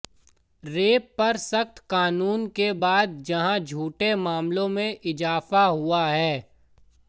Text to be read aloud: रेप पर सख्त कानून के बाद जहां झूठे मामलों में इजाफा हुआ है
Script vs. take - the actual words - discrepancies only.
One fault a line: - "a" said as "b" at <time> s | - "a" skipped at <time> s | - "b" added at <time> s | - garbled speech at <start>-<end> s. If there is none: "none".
none